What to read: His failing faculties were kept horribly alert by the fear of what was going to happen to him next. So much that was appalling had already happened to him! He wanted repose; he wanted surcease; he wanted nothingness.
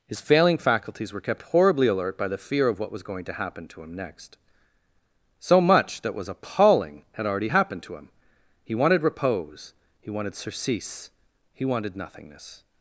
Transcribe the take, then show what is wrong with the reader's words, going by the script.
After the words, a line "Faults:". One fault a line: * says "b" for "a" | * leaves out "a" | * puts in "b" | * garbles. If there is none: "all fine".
His failing faculties were kept horribly alert by the fear of what was going to happen to him next. So much that was appalling had already happened to him! He wanted repose; he wanted surcease; he wanted nothingness.
Faults:
all fine